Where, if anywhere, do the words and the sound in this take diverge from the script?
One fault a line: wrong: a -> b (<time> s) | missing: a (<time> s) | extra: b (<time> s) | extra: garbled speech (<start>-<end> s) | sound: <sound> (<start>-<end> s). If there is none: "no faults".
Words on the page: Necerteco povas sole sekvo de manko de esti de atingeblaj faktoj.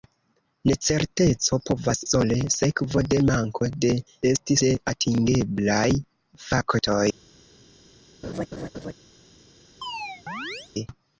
sound: laugh (8.2-8.9 s)
sound: chirp (9.8-10.7 s)